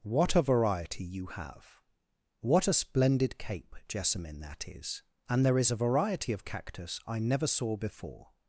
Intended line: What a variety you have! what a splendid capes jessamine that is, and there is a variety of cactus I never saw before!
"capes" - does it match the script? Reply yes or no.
no